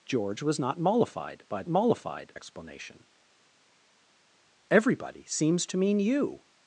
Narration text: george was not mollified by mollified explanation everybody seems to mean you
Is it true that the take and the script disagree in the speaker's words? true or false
false